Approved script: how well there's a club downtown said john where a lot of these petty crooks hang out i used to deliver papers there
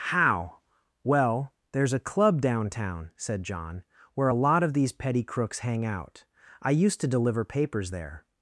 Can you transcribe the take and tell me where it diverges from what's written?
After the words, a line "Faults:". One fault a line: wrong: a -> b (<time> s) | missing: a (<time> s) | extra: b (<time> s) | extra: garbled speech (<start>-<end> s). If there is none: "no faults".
how well there's a club downtown said john where a lot of these petty crooks hang out i used to deliver papers there
Faults:
no faults